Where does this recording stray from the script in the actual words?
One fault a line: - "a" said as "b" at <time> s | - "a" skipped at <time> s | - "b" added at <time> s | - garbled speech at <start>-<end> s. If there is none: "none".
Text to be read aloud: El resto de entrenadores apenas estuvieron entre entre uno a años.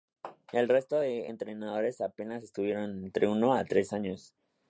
- "entre" skipped at 3.3 s
- "tres" added at 3.6 s